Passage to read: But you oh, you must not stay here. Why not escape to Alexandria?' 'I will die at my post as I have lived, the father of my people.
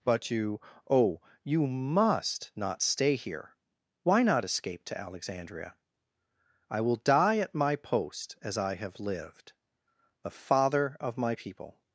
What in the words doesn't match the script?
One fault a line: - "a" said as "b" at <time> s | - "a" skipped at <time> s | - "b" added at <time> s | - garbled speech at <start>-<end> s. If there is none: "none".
none